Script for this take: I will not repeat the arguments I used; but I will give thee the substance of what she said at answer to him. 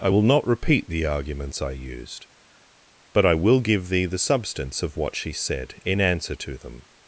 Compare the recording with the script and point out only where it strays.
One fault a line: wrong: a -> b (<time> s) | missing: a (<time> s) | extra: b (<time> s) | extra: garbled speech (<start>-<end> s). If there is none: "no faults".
wrong: at -> in (5.8 s)
wrong: him -> them (6.6 s)